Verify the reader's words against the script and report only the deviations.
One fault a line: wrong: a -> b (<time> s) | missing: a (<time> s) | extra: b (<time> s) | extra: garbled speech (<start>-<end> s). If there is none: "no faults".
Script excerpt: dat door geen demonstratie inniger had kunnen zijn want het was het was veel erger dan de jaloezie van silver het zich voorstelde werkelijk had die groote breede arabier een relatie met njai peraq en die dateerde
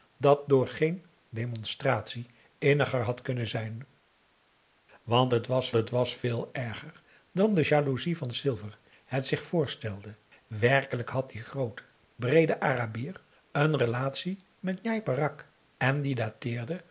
no faults